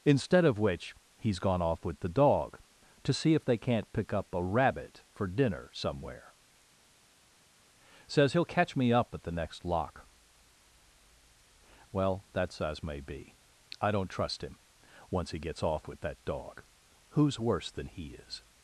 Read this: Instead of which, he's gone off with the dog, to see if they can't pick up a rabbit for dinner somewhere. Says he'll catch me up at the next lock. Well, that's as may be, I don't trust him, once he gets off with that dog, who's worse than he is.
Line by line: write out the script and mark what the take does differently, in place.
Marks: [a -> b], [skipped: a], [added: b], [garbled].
Instead of which, he's gone off with the dog, to see if they can't pick up a rabbit for dinner somewhere. Says he'll catch me up at the next lock. Well, that's as may be, I don't trust him, once he gets off with that dog, who's worse than he is.